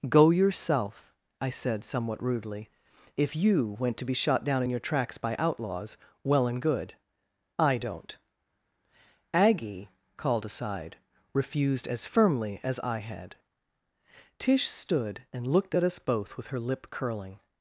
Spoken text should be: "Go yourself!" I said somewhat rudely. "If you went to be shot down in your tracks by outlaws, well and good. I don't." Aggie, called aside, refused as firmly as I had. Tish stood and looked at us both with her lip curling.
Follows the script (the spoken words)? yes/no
yes